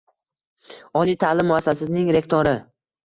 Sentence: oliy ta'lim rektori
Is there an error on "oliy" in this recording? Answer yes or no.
no